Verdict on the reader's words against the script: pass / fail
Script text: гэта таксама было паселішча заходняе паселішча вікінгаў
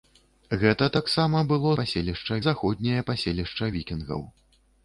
pass